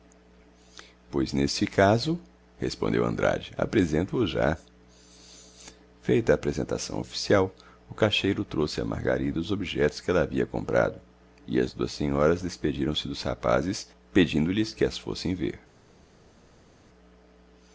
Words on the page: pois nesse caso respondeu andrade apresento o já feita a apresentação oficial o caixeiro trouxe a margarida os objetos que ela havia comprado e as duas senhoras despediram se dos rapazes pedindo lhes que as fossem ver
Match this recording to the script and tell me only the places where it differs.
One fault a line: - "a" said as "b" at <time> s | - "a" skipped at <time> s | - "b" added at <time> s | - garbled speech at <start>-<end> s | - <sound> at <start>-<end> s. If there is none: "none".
none